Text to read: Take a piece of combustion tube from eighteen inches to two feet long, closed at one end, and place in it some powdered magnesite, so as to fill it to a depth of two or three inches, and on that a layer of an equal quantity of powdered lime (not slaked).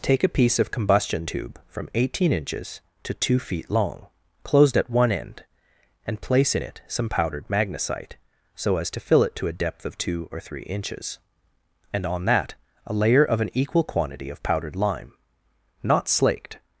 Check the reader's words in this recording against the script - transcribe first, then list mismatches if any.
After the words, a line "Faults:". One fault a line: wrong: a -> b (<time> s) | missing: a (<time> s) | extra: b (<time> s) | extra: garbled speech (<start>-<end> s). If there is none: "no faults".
Take a piece of combustion tube from eighteen inches to two feet long, closed at one end, and place in it some powdered magnesite, so as to fill it to a depth of two or three inches, and on that a layer of an equal quantity of powdered lime (not slaked).
Faults:
no faults